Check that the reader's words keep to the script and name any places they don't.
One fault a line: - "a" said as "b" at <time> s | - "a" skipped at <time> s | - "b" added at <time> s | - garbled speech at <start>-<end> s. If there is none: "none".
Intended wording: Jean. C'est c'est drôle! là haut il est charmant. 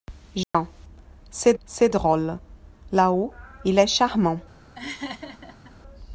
none